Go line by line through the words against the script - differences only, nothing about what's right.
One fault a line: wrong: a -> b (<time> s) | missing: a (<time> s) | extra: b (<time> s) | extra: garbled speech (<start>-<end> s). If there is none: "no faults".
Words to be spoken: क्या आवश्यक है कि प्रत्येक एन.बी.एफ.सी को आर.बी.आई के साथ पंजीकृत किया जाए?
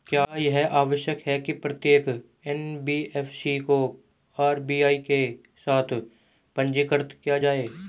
extra: यह (0.4 s)